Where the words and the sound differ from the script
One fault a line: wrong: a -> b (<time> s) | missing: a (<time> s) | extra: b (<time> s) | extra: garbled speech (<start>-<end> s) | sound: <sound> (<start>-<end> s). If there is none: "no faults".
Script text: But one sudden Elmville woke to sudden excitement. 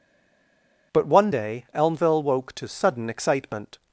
wrong: sudden -> day (1.3 s)